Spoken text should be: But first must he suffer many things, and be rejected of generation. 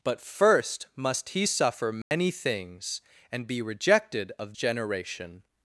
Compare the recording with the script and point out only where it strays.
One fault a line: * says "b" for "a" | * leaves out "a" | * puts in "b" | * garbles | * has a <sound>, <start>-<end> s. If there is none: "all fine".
* has a dropout, 2.0-2.1 s